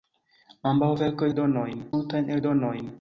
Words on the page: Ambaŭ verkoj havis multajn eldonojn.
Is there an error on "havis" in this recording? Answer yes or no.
yes